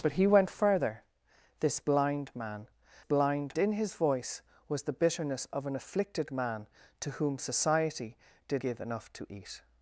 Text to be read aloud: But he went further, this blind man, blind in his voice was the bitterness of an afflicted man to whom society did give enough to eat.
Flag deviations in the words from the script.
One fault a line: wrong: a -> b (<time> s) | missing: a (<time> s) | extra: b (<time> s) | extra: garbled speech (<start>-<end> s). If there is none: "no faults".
no faults